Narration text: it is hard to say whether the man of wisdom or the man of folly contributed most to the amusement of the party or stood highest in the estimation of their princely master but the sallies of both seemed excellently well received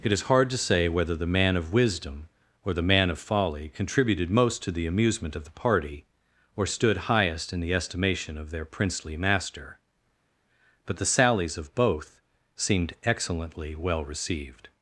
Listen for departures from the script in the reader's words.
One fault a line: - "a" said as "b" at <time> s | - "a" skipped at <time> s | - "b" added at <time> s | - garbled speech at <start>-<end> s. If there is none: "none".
none